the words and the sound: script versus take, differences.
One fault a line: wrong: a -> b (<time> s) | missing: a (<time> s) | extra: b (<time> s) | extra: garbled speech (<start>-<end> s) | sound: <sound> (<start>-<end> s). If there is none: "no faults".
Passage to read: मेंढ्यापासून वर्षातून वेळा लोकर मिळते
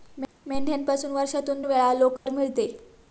sound: dropout (2.2-2.3 s)